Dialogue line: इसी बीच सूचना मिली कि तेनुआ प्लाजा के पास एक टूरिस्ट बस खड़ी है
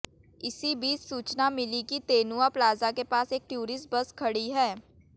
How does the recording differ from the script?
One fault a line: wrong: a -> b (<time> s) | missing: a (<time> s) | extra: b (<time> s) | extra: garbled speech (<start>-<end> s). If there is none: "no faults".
no faults